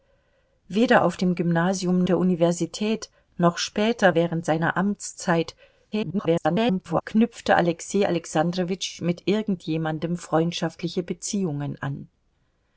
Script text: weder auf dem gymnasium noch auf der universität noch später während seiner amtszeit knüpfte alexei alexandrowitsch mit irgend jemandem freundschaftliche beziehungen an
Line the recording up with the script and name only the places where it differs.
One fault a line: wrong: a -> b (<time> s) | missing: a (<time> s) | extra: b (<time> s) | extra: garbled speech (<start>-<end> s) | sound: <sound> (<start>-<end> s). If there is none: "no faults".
missing: noch auf (2.0 s)
extra: garbled speech (5.9-7.0 s)